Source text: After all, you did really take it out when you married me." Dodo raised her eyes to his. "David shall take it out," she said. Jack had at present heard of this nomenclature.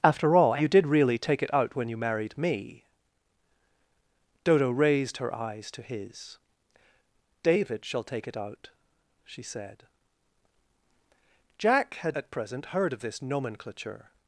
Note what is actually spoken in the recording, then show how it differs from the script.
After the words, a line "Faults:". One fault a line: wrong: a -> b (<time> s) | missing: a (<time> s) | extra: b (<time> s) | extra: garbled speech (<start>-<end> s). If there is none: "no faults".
After all, you did really take it out when you married me." Dodo raised her eyes to his. "David shall take it out," she said. Jack had at present heard of this nomenclature.
Faults:
no faults